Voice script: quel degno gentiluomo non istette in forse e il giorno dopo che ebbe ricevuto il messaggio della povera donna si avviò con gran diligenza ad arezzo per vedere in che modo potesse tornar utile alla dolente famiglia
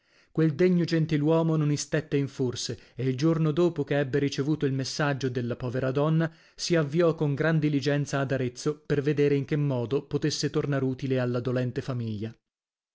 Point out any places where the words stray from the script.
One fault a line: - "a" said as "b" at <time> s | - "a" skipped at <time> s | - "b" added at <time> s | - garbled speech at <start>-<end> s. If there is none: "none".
none